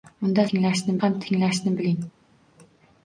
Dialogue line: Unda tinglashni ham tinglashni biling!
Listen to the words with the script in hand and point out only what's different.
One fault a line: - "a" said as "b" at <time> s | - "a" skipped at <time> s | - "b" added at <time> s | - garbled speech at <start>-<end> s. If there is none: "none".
none